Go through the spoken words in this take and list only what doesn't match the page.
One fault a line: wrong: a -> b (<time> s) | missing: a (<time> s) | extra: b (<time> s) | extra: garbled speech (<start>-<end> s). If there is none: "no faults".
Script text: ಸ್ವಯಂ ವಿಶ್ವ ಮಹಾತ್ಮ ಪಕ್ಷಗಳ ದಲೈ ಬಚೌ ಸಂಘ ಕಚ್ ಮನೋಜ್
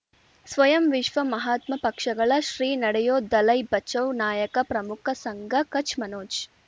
extra: ಶ್ರೀ ನಡೆಯೂ (2.4 s)
extra: ನಾಯಕ ಪ್ರಮುಖ (4.2 s)